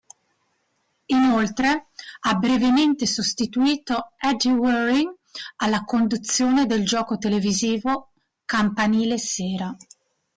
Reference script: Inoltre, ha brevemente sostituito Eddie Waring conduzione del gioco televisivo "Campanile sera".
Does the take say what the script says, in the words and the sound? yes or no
no